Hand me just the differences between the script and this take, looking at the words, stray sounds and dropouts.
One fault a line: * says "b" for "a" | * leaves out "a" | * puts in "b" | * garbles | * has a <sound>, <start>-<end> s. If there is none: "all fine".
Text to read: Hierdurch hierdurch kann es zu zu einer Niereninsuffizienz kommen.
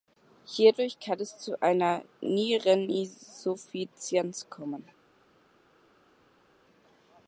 * leaves out "hierdurch"
* leaves out "zu"